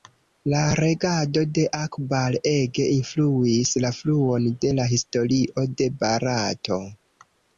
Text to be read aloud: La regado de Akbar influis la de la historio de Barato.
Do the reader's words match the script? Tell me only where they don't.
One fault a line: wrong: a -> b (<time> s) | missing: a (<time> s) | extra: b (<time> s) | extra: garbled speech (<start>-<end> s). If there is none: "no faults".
extra: ege (2.5 s)
extra: fluon (4.0 s)